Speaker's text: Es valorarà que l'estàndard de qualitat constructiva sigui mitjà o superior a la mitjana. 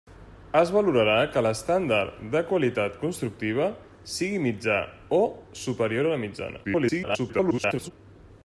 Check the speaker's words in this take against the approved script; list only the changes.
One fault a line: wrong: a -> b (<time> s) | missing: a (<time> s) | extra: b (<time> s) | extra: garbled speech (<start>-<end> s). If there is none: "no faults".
extra: garbled speech (6.6-7.9 s)